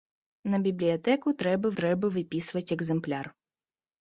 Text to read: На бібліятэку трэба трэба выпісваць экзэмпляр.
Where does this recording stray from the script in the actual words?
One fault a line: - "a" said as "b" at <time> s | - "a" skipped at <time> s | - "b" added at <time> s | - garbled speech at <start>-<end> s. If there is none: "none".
none